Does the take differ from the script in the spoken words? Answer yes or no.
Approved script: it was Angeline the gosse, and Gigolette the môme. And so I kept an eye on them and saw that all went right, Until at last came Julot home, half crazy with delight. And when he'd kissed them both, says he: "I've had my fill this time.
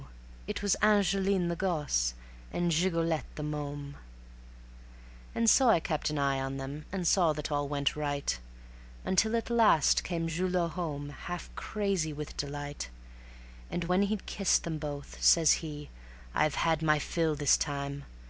no